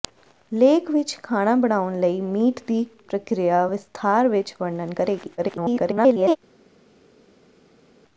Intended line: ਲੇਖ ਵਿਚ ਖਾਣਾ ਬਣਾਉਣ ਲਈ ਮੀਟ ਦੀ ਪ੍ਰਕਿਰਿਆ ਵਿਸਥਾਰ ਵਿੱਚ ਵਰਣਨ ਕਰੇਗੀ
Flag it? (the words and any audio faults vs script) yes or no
yes